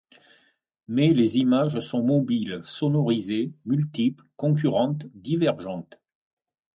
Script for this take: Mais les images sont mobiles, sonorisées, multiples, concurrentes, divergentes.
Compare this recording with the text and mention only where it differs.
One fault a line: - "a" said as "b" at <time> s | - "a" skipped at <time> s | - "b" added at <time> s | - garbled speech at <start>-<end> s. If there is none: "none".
none